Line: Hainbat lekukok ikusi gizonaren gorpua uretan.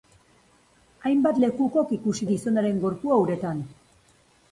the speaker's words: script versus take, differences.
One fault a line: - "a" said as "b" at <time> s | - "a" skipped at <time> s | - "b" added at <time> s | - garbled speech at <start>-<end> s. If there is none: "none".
none